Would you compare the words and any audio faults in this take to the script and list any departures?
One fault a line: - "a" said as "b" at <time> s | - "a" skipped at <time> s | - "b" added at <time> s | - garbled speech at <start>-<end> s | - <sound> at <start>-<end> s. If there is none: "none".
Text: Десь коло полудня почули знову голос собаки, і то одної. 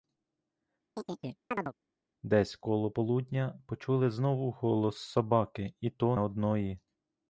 - chirp at 1.0-1.7 s